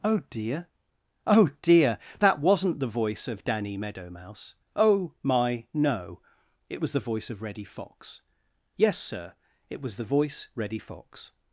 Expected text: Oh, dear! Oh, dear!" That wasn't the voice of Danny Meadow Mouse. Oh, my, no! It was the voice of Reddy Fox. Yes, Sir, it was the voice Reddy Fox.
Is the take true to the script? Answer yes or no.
yes